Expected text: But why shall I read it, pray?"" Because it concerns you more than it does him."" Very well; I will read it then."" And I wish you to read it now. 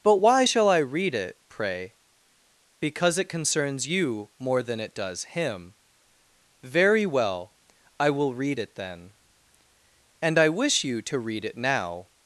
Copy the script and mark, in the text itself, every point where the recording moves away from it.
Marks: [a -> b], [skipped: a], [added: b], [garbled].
But why shall I read it, pray?"" Because it concerns you more than it does him."" Very well; I will read it then."" And I wish you to read it now.